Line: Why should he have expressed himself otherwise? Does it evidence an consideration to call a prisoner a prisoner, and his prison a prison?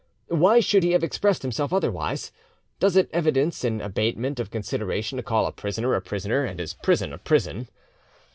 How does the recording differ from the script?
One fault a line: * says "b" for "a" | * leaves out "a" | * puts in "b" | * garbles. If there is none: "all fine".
* puts in "abatement of"